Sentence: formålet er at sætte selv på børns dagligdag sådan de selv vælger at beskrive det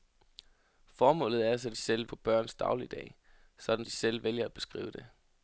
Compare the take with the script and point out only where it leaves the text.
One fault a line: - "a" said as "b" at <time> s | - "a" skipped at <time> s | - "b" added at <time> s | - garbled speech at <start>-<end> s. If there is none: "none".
none